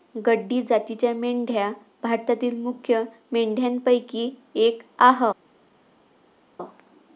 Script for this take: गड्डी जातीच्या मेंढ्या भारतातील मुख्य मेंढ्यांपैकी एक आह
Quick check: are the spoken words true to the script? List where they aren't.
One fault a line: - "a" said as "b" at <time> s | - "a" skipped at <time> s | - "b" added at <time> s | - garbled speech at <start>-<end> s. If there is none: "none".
none